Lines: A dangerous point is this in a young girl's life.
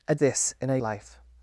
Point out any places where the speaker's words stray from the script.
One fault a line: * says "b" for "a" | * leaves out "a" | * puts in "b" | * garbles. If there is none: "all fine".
* leaves out "dangerous point is"
* leaves out "young girl's"